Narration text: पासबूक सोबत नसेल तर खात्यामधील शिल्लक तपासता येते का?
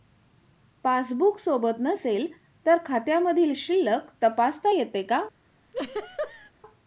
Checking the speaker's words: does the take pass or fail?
pass